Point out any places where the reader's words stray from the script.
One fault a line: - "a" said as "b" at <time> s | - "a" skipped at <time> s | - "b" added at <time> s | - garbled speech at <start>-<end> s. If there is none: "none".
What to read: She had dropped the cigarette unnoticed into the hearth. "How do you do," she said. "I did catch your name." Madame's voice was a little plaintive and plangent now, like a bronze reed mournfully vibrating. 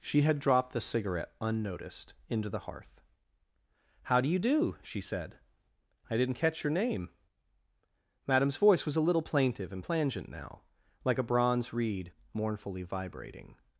- "did" said as "didn't" at 6.2 s